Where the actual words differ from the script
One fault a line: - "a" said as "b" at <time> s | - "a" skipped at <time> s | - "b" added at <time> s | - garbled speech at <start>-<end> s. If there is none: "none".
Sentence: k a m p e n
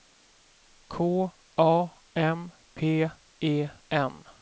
none